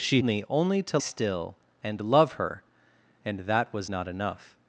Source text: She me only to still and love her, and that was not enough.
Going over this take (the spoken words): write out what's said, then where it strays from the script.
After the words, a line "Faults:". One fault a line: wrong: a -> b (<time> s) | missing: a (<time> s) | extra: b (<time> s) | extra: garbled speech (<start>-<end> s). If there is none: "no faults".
She me only to still and love her, and that was not enough.
Faults:
no faults